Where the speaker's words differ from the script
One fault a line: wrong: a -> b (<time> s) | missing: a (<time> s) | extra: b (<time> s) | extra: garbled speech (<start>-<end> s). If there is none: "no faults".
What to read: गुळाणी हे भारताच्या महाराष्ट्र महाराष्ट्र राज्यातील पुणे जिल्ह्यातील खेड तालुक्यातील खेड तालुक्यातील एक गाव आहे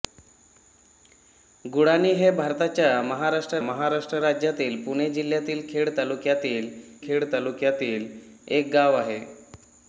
no faults